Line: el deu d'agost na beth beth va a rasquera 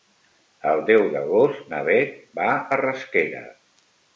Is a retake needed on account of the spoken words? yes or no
yes